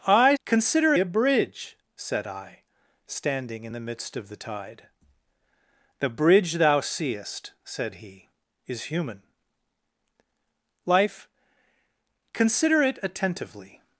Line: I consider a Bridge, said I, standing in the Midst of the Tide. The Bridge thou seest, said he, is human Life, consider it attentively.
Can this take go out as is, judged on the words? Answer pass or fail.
pass